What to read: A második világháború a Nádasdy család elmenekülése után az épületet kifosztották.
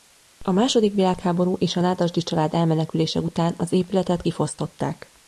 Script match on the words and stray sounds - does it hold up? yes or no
no